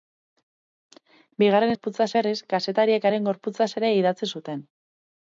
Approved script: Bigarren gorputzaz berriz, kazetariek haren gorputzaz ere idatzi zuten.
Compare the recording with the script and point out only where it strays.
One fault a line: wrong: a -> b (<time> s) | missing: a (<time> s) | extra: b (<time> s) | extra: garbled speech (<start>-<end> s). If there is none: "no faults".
no faults